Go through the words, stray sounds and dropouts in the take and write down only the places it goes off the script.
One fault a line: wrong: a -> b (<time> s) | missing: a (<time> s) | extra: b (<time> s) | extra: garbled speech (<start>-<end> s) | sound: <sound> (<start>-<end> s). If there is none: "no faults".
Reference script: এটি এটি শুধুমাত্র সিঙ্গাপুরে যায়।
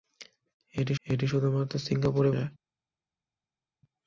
no faults